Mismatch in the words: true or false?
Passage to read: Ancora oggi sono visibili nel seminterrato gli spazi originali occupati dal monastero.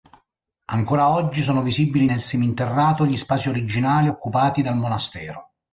false